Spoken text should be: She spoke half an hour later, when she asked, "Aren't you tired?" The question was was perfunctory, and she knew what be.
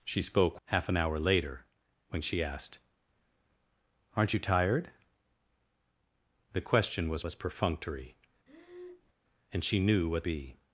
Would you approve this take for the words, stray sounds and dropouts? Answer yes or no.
no